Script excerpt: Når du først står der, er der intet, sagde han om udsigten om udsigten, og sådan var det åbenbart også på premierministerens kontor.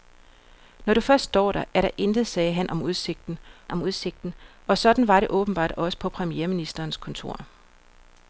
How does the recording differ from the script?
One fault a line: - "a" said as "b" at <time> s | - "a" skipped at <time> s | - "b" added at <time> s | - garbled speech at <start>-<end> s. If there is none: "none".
none